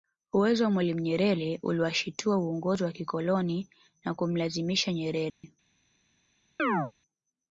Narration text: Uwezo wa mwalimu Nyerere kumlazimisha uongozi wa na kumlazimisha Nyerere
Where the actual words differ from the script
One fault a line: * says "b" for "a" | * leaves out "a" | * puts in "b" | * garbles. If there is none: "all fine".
* says "uliwashitua" for "kumlazimisha"
* puts in "kikoloni"